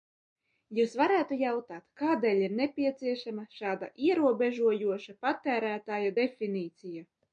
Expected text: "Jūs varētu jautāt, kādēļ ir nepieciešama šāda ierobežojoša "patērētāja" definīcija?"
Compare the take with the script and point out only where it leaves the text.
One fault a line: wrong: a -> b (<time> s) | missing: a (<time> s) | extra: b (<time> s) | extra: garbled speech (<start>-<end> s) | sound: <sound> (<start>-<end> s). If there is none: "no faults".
no faults